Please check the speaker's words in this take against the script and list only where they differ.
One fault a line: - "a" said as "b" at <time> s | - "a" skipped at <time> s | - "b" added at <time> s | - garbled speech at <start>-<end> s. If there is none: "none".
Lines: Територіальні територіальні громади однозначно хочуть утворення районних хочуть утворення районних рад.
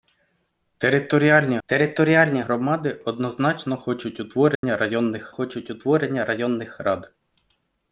none